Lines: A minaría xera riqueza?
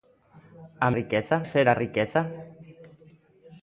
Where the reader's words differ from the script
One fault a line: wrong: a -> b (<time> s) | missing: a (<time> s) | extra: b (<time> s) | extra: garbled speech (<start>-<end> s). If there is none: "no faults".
wrong: minaría -> riqueza (1.0 s)